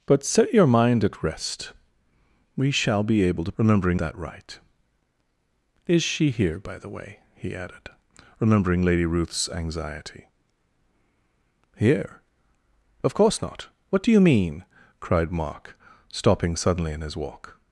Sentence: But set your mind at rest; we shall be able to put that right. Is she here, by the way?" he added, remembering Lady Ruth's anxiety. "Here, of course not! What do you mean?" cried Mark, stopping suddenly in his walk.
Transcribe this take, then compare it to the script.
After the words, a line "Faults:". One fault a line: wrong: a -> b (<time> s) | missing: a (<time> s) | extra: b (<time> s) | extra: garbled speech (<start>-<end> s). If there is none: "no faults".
But set your mind at rest; we shall be able to remembering that right. Is she here, by the way?" he added, remembering Lady Ruth's anxiety. "Here, of course not! What do you mean?" cried Mark, stopping suddenly in his walk.
Faults:
wrong: put -> remembering (3.6 s)